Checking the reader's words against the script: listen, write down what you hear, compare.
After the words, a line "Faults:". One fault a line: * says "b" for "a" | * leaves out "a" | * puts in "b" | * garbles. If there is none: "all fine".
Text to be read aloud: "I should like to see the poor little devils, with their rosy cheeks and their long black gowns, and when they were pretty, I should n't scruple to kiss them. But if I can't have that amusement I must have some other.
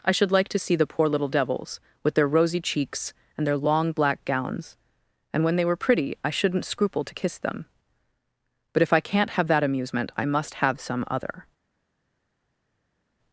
"I should like to see the poor little devils, with their rosy cheeks and their long black gowns, and when they were pretty, I should n't scruple to kiss them. But if I can't have that amusement I must have some other.
Faults:
all fine